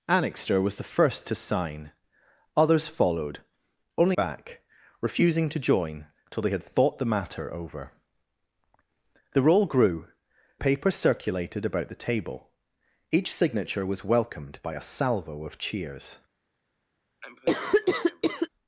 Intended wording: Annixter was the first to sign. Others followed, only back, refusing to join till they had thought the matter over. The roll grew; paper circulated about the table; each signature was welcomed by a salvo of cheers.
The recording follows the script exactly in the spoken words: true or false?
true